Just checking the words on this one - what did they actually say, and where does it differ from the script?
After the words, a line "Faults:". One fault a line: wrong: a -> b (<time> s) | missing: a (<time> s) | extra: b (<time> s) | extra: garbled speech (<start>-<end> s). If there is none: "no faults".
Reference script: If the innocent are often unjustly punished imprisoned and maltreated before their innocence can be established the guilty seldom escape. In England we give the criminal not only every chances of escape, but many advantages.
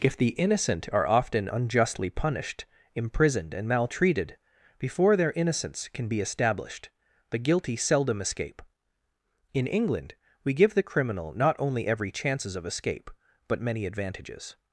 If the innocent are often unjustly punished imprisoned and maltreated before their innocence can be established the guilty seldom escape. In England we give the criminal not only every chances of escape, but many advantages.
Faults:
no faults